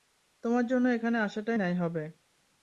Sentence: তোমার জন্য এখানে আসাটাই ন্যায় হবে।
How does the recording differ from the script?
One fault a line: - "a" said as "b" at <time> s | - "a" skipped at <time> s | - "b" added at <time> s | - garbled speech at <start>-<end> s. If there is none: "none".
none